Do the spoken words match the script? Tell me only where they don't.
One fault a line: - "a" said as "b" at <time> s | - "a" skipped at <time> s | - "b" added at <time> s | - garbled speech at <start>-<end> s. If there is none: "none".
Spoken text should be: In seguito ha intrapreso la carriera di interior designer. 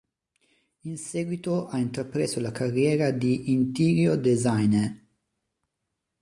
none